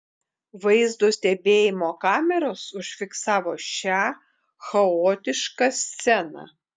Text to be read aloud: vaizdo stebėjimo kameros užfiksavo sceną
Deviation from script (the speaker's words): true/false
true